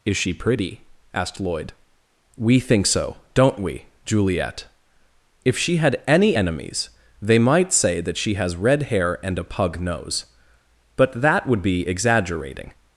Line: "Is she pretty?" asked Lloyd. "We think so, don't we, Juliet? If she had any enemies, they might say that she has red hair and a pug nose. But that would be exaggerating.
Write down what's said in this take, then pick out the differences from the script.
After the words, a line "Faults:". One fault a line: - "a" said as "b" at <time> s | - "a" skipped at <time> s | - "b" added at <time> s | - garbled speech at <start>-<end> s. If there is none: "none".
"Is she pretty?" asked Lloyd. "We think so, don't we, Juliet? If she had any enemies, they might say that she has red hair and a pug nose. But that would be exaggerating.
Faults:
none